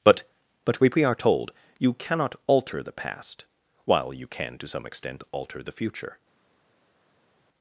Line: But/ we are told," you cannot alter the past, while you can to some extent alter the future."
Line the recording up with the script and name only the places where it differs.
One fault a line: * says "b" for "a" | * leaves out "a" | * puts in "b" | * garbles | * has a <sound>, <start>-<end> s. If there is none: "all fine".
* puts in "but we"